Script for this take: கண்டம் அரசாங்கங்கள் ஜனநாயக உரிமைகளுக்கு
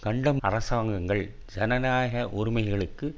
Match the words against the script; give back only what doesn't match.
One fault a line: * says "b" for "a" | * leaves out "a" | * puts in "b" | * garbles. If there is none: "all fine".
all fine